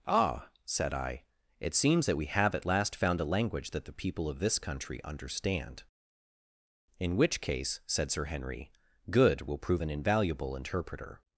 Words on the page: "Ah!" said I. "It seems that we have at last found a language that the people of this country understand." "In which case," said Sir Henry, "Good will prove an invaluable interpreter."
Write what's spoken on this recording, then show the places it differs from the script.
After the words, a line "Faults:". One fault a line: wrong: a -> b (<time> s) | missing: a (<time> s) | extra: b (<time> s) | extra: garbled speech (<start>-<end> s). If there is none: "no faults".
"Ah!" said I. "It seems that we have at last found a language that the people of this country understand." "In which case," said Sir Henry, "Good will prove an invaluable interpreter."
Faults:
no faults